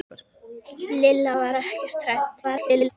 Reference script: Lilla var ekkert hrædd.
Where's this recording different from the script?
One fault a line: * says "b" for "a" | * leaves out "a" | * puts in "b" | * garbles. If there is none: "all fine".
* garbles